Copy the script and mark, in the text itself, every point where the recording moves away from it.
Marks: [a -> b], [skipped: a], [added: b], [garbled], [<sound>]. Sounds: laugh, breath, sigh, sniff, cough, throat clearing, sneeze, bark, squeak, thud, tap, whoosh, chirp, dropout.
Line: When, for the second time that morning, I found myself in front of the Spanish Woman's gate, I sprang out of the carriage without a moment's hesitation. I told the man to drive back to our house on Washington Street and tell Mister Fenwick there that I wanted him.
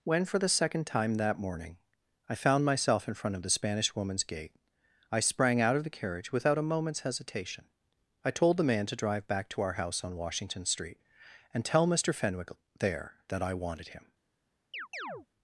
When, for the second time that morning, I found myself in front of the Spanish Woman's gate, I sprang out of the carriage without a moment's hesitation. I told the man to drive back to our house on Washington Street and tell Mister Fenwick there that I wanted him. [chirp]